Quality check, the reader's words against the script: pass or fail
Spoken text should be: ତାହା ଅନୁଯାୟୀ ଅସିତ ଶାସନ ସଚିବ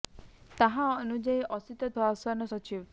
pass